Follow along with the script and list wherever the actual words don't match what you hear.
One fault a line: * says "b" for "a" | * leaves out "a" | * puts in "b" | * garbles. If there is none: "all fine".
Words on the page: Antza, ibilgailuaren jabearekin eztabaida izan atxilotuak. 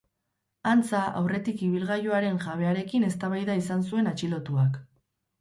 * puts in "aurretik"
* puts in "zuen"